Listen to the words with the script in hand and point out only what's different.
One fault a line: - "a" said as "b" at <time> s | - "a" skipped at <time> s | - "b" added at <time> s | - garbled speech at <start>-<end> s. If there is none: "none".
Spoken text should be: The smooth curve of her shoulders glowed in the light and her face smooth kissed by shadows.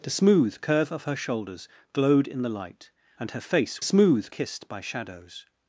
none